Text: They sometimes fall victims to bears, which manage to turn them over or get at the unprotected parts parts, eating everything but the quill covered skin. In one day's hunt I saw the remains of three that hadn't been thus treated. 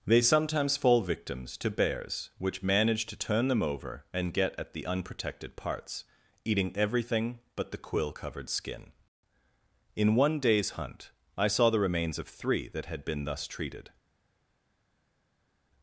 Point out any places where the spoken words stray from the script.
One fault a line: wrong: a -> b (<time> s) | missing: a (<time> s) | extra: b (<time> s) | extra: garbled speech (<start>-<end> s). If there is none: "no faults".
wrong: or -> and (4.1 s)
missing: parts (6.0 s)
wrong: hadn't -> had (12.8 s)